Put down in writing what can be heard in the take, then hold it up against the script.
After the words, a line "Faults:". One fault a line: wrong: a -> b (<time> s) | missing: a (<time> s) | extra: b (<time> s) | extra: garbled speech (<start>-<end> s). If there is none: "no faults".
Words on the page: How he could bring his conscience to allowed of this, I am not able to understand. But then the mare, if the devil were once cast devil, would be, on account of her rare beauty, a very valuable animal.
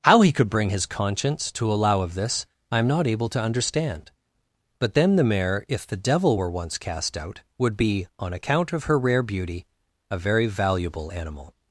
How he could bring his conscience to allow of this, I am not able to understand. But then the mare, if the devil were once cast out, would be, on account of her rare beauty, a very valuable animal.
Faults:
wrong: allowed -> allow (1.7 s)
wrong: devil -> out (7.2 s)